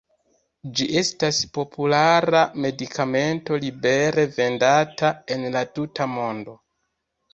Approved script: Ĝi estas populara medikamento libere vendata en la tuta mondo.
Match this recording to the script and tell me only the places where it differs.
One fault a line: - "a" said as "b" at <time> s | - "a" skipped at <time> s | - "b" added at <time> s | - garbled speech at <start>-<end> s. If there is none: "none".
none